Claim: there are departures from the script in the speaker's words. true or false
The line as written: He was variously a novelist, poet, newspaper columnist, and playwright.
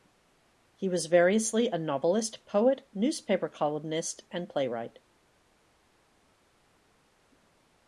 false